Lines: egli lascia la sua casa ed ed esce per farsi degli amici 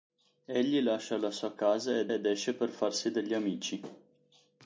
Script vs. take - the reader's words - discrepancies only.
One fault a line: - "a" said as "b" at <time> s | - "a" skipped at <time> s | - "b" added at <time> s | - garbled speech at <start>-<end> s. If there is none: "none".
none